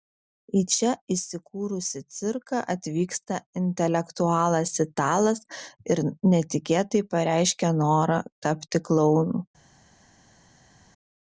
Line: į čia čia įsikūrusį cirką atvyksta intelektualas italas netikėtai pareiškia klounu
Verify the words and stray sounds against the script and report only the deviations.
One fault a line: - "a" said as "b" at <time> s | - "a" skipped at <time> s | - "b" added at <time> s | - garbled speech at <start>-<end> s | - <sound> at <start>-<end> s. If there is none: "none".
- "čia" skipped at 0.9 s
- "ir" added at 5.9 s
- "norą tapti" added at 7.8 s